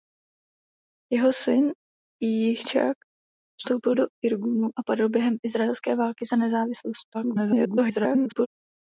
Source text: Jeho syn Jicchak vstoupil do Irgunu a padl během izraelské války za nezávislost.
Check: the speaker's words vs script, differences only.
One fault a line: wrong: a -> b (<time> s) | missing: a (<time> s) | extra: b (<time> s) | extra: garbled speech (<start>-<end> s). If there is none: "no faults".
extra: garbled speech (7.1-8.5 s)